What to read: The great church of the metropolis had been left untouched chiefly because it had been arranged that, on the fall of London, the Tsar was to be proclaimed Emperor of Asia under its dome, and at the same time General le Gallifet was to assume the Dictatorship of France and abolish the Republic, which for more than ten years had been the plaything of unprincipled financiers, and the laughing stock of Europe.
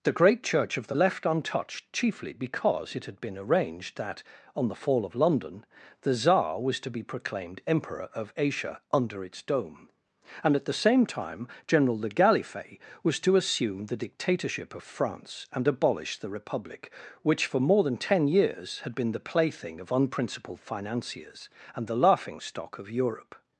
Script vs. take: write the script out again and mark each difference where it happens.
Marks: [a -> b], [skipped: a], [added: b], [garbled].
The great church of the [skipped: metropolis had been] left untouched chiefly because it had been arranged that, on the fall of London, the Tsar was to be proclaimed Emperor of Asia under its dome, and at the same time General le Gallifet was to assume the Dictatorship of France and abolish the Republic, which for more than ten years had been the plaything of unprincipled financiers, and the laughing stock of Europe.